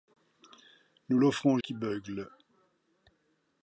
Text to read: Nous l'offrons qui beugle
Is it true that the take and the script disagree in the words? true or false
false